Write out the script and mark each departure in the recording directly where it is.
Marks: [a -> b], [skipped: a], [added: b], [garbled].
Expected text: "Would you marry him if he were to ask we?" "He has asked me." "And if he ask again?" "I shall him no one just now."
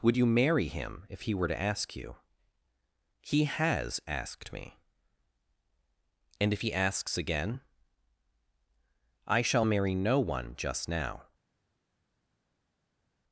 "Would you marry him if he were to ask [we?" -> you] "He has asked me." "And if he [ask -> asks] again?" "I shall [him -> marry] no one just now."